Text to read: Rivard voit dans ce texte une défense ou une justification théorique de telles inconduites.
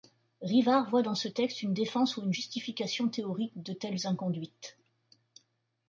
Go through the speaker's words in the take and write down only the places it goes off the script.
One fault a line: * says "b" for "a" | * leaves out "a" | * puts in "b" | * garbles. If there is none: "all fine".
all fine